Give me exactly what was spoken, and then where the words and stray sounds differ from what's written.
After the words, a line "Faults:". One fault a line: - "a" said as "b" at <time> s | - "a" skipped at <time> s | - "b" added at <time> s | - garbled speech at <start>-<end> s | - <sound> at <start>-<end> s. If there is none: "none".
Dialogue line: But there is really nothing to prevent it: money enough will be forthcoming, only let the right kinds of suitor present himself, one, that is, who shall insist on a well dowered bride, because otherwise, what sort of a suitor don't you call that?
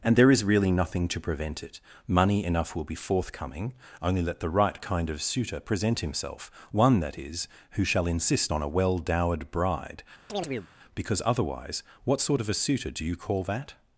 And there is really nothing to prevent it: money enough will be forthcoming, only let the right kind of suitor present himself, one, that is, who shall insist on a well dowered bride, because otherwise, what sort of a suitor do you call that?
Faults:
- "But" said as "And" at 0.0 s
- "kinds" said as "kind" at 4.8 s
- chirp at 10.3-10.7 s
- "don't" said as "do" at 12.9 s